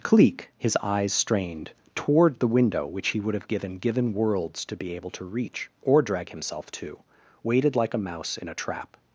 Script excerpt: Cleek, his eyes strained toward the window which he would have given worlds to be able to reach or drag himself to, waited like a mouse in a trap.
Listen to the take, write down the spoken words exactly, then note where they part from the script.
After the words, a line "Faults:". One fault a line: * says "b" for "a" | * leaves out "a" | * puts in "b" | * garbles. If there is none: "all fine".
Cleek, his eyes strained toward the window which he would have given given worlds to be able to reach or drag himself to, waited like a mouse in a trap.
Faults:
* puts in "given"